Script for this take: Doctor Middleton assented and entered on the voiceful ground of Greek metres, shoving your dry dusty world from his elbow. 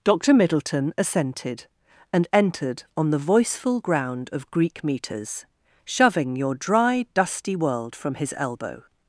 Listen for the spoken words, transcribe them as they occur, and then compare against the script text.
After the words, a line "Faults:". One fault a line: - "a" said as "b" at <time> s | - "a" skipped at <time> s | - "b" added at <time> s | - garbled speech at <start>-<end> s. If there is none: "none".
Doctor Middleton assented and entered on the voiceful ground of Greek metres, shoving your dry dusty world from his elbow.
Faults:
none